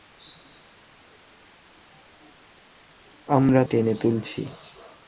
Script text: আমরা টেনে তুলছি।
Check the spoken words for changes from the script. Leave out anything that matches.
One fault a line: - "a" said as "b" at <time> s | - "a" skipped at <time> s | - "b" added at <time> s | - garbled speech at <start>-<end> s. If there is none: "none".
none